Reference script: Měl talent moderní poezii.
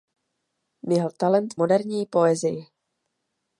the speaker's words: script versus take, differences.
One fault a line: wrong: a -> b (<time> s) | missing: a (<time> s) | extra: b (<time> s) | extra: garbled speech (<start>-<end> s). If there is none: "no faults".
no faults